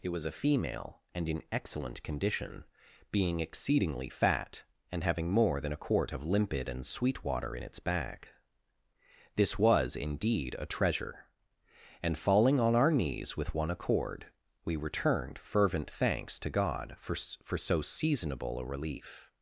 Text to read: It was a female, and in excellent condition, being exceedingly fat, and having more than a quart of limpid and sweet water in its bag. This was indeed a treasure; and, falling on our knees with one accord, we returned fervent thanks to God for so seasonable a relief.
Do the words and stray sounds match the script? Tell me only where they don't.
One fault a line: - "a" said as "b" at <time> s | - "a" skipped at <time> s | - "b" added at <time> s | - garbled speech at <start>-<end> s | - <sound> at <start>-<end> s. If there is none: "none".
- "for" added at 17.4 s